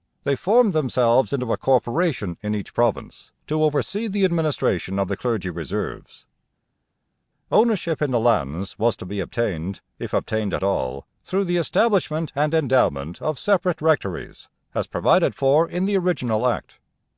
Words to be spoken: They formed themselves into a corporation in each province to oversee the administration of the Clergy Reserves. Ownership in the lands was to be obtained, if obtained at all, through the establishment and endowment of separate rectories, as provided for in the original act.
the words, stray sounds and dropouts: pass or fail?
pass